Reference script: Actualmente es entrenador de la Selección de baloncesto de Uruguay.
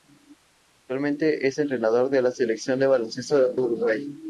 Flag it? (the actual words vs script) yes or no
yes